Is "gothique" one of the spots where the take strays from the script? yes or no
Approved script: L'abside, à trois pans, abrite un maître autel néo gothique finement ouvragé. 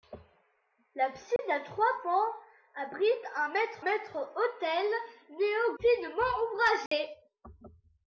yes